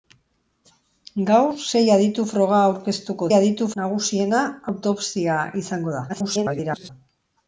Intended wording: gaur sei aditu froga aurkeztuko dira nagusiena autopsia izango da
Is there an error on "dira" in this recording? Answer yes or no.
yes